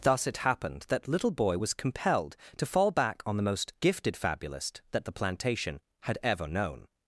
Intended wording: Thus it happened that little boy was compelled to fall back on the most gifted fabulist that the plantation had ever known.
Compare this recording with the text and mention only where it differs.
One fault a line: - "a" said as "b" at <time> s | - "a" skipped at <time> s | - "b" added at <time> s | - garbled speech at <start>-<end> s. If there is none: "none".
none